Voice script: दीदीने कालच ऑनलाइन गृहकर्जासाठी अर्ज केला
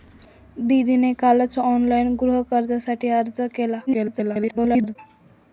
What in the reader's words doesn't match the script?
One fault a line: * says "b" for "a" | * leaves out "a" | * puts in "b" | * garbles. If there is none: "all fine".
* garbles